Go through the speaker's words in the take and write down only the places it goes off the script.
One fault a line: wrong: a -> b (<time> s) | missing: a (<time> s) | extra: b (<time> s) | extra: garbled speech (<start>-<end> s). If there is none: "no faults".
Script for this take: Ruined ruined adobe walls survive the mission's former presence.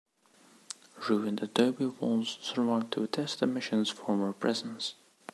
missing: ruined (1.4 s)
extra: to attest (2.9 s)